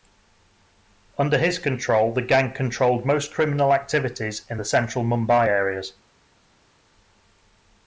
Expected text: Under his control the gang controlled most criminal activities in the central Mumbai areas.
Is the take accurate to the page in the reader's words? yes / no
yes